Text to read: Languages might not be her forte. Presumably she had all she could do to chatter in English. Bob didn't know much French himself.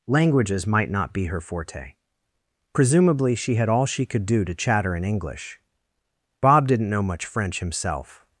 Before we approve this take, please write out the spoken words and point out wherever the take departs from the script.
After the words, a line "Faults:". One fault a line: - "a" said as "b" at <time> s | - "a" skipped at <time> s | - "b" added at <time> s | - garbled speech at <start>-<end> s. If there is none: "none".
Languages might not be her forte. Presumably she had all she could do to chatter in English. Bob didn't know much French himself.
Faults:
none